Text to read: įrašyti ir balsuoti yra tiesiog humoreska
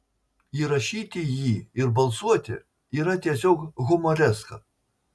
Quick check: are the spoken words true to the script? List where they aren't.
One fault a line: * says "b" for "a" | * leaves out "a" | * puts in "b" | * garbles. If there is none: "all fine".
* puts in "jį"